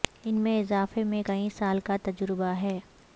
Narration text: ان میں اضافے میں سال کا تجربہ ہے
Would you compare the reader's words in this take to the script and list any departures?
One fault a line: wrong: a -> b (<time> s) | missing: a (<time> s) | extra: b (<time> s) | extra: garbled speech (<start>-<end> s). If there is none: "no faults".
extra: کئی (1.2 s)